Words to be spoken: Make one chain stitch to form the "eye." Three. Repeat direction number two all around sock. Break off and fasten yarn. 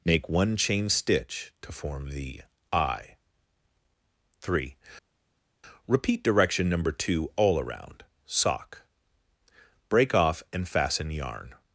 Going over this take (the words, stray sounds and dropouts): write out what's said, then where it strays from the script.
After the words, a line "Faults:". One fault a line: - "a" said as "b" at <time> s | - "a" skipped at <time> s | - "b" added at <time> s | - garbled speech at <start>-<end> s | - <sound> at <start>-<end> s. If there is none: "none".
Make one chain stitch to form the "eye." Three. Repeat direction number two all around sock. Break off and fasten yarn.
Faults:
none